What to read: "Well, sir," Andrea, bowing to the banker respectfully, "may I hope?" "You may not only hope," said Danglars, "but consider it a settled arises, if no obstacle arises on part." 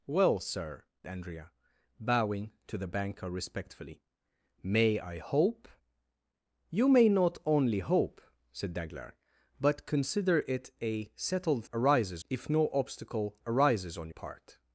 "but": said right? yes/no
yes